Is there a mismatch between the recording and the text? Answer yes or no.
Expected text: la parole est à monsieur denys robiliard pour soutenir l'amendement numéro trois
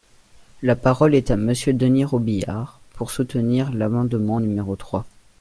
no